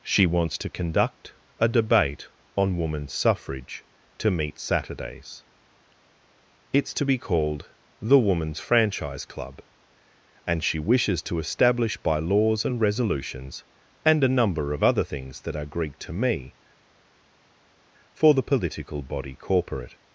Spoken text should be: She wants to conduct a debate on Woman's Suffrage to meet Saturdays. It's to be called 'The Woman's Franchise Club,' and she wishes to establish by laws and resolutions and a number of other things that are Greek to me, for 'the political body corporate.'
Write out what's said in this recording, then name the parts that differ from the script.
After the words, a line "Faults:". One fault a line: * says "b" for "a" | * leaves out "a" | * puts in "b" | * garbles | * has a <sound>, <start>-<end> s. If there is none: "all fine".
She wants to conduct a debate on Woman's Suffrage to meet Saturdays. It's to be called 'The Woman's Franchise Club,' and she wishes to establish by laws and resolutions and a number of other things that are Greek to me, for 'the political body corporate.'
Faults:
all fine